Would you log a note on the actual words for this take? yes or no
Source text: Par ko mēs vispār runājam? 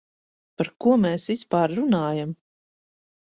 no